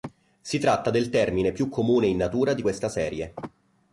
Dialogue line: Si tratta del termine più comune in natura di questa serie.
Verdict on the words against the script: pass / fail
pass